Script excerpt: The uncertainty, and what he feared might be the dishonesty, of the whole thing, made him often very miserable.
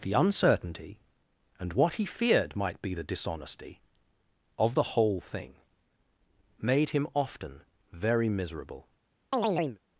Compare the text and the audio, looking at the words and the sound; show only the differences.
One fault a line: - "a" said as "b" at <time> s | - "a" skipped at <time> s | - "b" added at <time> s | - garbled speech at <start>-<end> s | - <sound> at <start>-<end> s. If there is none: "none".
- chirp at 9.3-9.8 s